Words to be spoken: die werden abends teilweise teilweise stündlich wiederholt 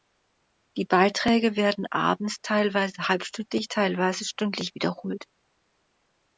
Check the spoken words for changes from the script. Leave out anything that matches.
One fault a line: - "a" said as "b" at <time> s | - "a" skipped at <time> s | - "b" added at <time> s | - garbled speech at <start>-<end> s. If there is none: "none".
- "beiträge" added at 0.8 s
- "halbstündlich" added at 3.1 s